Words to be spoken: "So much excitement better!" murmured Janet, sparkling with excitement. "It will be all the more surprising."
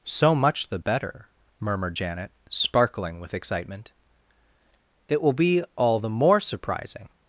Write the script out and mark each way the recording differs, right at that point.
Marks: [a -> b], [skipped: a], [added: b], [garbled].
"So much [excitement -> the] better!" murmured Janet, sparkling with excitement. "It will be all the more surprising."